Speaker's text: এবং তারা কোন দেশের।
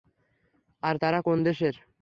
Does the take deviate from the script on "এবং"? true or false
true